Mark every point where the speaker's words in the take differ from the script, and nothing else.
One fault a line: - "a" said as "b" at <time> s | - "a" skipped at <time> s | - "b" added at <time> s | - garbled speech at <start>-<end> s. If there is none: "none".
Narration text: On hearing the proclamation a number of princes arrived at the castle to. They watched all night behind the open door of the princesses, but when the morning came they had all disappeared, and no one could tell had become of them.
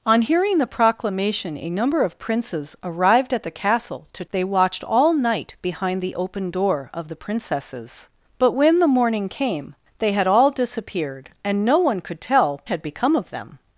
none